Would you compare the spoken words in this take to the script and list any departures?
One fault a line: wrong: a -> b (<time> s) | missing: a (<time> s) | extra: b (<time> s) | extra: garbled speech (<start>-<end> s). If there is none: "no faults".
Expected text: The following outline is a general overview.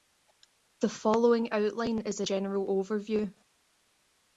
no faults